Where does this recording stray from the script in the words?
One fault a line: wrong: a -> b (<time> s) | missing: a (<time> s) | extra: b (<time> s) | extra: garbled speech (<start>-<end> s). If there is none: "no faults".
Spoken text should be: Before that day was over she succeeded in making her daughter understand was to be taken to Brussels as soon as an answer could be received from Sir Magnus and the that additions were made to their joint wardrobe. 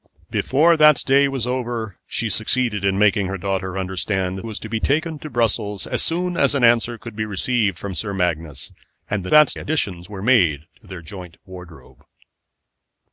no faults